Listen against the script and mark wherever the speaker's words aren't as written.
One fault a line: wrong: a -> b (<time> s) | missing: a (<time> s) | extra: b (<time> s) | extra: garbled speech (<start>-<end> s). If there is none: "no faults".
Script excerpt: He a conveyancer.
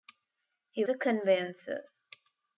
no faults